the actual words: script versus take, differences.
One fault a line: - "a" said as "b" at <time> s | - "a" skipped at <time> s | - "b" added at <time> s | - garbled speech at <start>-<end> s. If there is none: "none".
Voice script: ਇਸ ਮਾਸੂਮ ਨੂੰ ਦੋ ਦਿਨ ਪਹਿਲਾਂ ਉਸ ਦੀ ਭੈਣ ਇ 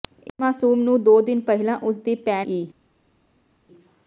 none